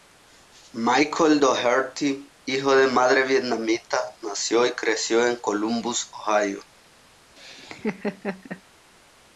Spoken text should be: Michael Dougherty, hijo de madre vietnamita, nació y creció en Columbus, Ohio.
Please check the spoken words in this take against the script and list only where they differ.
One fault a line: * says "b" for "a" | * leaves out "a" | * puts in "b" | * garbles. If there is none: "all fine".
all fine